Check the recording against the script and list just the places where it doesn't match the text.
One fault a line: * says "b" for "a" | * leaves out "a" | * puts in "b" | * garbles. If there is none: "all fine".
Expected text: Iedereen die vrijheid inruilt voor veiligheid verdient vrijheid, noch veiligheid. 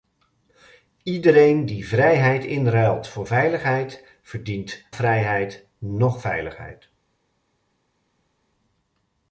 all fine